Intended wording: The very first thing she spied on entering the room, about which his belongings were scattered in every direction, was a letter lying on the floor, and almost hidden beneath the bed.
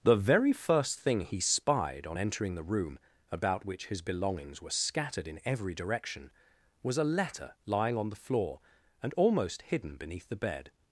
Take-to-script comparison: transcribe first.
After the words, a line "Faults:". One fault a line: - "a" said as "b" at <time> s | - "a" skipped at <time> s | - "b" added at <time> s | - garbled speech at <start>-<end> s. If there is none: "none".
The very first thing he spied on entering the room, about which his belongings were scattered in every direction, was a letter lying on the floor, and almost hidden beneath the bed.
Faults:
- "she" said as "he" at 1.2 s